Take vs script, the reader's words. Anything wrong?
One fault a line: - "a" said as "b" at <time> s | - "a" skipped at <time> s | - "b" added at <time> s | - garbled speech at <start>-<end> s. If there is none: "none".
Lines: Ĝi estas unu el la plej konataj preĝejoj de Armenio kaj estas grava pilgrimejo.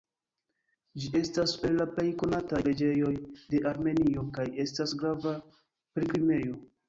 - "unu" skipped at 1.5 s